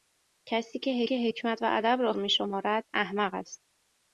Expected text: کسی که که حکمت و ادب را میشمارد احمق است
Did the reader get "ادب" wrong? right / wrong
right